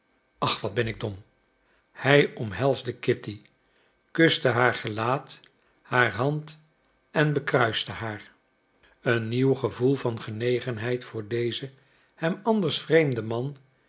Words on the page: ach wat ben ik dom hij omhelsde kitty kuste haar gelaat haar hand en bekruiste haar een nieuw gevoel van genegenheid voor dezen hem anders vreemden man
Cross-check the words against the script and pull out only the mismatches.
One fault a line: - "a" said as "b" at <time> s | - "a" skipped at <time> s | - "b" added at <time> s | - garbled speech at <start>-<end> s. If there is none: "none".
none